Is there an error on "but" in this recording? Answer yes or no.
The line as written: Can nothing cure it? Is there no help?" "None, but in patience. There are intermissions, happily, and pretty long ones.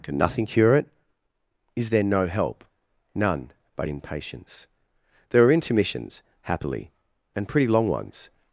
no